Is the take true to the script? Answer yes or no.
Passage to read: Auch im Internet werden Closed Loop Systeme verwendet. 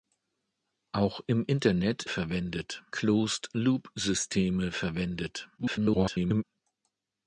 no